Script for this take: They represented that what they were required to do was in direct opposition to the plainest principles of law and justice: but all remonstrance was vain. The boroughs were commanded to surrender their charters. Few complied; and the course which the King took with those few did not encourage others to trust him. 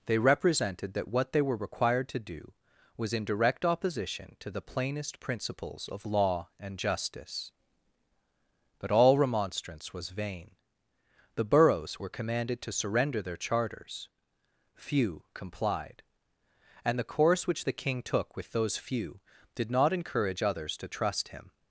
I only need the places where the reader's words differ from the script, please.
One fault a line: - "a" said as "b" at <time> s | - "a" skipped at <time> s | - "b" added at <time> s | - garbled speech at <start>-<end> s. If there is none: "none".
none